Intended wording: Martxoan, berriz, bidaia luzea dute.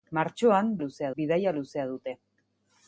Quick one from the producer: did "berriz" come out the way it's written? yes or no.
no